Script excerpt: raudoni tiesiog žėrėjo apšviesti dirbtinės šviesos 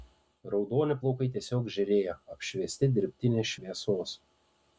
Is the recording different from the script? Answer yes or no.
yes